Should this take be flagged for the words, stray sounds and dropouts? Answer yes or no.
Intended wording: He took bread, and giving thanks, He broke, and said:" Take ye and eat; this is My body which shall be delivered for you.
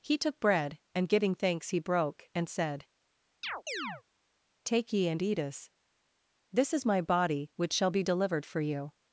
yes